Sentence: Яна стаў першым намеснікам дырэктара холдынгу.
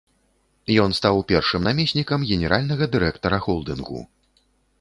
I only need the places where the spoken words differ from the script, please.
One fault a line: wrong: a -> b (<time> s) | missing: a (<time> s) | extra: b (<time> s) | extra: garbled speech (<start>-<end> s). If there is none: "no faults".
wrong: Яна -> Ён (0.8 s)
extra: генеральнага (2.3 s)